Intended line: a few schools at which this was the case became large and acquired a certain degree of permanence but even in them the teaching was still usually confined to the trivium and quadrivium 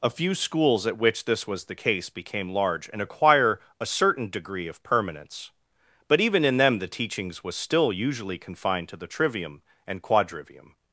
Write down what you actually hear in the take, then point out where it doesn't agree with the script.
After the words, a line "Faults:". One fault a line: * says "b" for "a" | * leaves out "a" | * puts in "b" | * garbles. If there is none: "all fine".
a few schools at which this was the case became large and acquire a certain degree of permanence but even in them the teachings was still usually confined to the trivium and quadrivium
Faults:
* says "acquire" for "acquired"
* says "teachings" for "teaching"